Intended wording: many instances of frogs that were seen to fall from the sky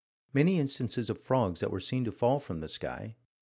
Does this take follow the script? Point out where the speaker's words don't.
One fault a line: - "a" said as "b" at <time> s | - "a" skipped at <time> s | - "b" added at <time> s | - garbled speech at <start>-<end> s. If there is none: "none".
none